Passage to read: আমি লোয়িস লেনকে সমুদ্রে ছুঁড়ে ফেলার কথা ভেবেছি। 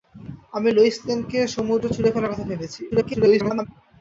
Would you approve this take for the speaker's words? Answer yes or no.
no